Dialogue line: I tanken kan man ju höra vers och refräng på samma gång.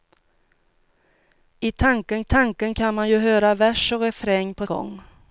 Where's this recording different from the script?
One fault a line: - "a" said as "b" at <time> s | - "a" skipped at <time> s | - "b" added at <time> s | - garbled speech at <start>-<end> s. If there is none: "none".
- "tanken" added at 2.2 s
- "samma" skipped at 4.7 s